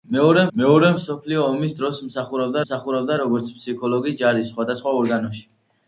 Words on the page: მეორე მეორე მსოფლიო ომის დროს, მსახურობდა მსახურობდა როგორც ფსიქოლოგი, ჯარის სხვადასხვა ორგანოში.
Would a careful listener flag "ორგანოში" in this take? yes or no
no